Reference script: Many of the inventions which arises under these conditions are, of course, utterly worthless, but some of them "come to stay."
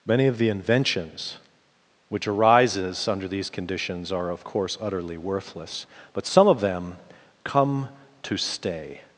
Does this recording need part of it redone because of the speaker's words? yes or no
no